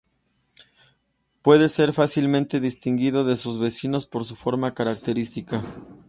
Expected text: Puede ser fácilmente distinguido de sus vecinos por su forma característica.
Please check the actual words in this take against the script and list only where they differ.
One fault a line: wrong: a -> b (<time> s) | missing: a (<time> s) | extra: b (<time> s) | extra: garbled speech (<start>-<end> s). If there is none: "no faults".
no faults